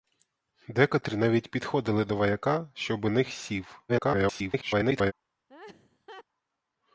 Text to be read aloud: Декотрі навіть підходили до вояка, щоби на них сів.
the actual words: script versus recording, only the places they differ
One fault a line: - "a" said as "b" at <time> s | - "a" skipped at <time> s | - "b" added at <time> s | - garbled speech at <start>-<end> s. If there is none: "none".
- "на" skipped at 3.1 s
- garbled speech at 3.9-5.1 s